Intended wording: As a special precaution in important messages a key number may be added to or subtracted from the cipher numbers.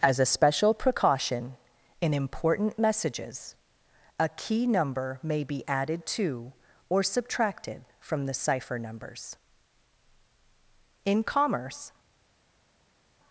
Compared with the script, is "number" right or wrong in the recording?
right